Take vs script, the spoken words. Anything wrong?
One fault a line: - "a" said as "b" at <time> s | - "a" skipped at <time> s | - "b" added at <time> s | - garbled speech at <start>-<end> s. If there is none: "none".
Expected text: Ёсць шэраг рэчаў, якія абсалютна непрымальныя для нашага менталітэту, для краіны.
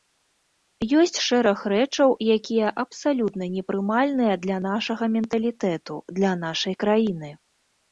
- "нашай" added at 6.5 s